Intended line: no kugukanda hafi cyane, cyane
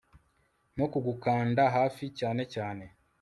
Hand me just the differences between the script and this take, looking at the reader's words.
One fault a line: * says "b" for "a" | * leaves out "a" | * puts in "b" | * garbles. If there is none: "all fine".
all fine